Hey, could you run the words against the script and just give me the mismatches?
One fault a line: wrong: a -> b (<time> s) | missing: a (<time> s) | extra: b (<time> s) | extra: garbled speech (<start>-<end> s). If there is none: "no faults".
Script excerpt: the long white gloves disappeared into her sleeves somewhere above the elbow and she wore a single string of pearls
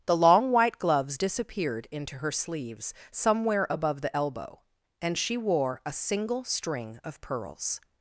no faults